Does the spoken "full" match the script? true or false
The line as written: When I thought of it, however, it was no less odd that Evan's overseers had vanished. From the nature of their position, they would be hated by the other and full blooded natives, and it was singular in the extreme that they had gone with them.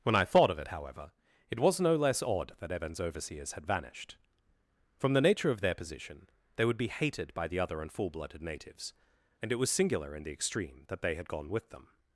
true